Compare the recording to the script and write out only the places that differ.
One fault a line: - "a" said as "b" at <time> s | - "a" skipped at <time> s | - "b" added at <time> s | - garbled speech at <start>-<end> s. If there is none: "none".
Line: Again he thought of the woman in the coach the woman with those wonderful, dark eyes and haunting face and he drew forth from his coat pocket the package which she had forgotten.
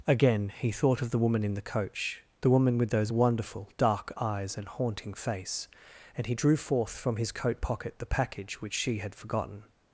none